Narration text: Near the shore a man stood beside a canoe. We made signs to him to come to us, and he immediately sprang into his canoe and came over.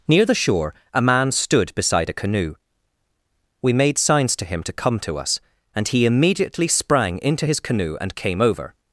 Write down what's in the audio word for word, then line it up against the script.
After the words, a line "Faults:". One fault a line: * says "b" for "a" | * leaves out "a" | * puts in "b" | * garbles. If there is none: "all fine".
Near the shore a man stood beside a canoe. We made signs to him to come to us, and he immediately sprang into his canoe and came over.
Faults:
all fine